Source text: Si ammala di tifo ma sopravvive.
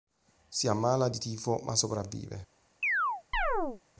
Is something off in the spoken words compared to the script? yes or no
no